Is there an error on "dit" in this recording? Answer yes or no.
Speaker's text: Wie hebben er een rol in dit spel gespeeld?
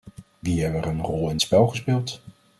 yes